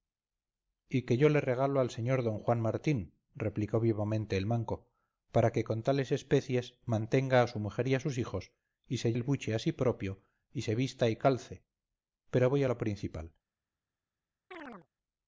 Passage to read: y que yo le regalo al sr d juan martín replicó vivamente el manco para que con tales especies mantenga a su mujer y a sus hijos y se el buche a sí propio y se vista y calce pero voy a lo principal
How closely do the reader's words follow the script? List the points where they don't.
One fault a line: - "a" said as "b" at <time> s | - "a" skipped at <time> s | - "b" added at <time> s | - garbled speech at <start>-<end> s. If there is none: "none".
none